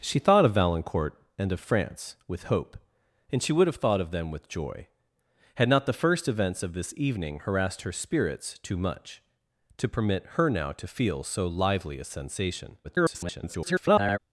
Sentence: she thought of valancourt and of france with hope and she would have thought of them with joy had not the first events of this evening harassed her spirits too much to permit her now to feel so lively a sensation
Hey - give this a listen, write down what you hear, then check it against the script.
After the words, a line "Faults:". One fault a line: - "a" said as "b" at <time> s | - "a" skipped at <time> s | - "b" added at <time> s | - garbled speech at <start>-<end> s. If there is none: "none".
she thought of valancourt and of france with hope and she would have thought of them with joy had not the first events of this evening harassed her spirits too much to permit her now to feel so lively a sensation [garbled]
Faults:
- garbled speech at 12.8-14.2 s